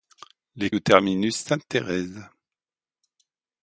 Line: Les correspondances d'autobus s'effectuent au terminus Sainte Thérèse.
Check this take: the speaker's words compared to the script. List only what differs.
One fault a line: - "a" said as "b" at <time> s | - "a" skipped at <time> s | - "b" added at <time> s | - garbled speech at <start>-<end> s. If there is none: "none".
- "correspondances d'autobus s'effectuent" skipped at 0.7 s